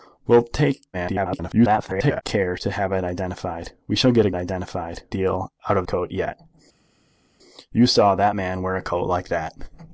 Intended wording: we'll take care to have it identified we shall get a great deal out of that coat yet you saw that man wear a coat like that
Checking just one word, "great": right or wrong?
wrong